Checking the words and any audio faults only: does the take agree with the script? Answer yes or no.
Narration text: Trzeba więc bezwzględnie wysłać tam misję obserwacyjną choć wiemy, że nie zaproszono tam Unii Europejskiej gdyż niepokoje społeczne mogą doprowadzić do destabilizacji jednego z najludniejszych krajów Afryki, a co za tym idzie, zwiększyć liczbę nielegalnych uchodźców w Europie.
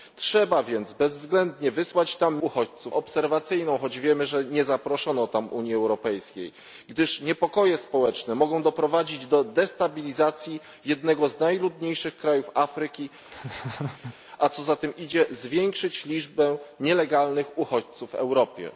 no